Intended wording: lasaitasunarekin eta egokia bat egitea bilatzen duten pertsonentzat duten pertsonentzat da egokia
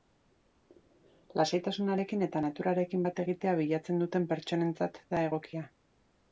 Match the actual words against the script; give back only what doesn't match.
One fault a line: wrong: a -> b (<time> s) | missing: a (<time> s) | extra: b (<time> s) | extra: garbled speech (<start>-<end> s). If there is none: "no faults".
wrong: egokia -> naturarekin (2.5 s)
missing: duten pertsonentzat (5.0 s)